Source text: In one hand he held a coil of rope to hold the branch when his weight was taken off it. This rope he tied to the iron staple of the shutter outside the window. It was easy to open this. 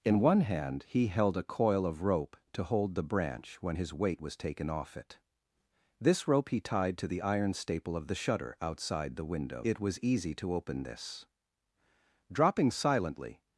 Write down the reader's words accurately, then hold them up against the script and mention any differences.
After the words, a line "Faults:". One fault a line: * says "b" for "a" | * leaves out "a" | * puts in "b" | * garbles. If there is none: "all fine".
In one hand he held a coil of rope to hold the branch when his weight was taken off it. This rope he tied to the iron staple of the shutter outside the window. It was easy to open this. Dropping silently
Faults:
* puts in "Dropping silently"